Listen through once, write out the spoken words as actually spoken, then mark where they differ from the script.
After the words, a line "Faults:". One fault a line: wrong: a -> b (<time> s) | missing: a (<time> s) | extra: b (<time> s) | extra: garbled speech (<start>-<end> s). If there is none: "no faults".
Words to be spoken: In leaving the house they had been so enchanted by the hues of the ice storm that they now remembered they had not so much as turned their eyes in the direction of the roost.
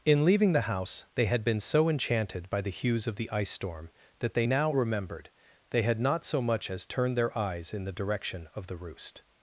In leaving the house they had been so enchanted by the hues of the ice storm that they now remembered they had not so much as turned their eyes in the direction of the roost.
Faults:
no faults